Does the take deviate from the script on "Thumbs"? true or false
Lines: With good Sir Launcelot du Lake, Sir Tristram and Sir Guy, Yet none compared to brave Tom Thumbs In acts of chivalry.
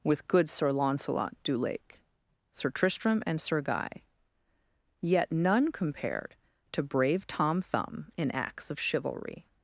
true